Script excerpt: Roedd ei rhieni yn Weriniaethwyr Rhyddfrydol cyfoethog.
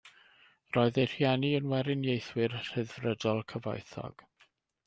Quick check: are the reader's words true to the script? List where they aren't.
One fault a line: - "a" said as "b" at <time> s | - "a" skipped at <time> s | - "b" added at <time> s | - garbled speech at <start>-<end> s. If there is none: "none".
none